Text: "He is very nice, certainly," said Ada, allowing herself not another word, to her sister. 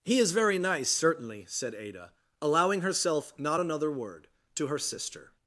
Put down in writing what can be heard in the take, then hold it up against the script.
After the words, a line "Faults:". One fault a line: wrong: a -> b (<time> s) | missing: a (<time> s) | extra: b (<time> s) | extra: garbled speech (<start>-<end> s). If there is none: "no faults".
"He is very nice, certainly," said Ada, allowing herself not another word, to her sister.
Faults:
no faults